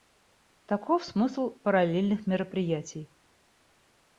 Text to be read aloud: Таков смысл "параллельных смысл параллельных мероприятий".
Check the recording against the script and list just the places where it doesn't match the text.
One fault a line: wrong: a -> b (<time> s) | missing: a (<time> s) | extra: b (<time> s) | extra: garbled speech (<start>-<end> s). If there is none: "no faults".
missing: смысл параллельных (2.3 s)